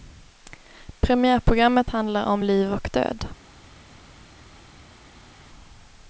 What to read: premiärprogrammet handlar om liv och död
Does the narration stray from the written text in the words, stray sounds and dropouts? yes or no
no